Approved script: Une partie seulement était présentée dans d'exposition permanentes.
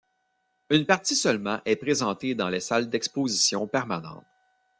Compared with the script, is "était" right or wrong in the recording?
wrong